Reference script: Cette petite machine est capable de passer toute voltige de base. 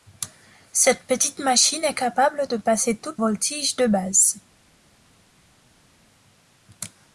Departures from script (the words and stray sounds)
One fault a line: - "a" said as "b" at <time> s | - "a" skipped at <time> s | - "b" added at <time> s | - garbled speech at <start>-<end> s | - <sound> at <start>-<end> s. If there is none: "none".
none